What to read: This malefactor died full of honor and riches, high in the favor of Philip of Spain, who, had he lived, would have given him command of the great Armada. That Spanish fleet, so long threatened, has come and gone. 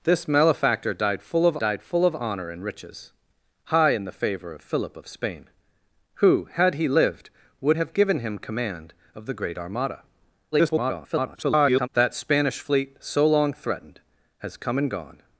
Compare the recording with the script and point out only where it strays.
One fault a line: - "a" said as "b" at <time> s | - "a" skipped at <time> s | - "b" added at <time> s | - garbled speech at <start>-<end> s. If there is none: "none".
- "died full of" added at 1.6 s
- garbled speech at 10.5-11.9 s